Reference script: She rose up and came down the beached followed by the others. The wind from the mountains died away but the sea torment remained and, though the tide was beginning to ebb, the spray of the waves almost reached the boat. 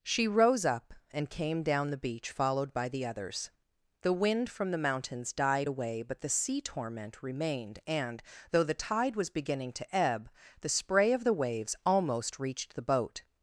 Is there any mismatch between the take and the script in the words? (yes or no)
yes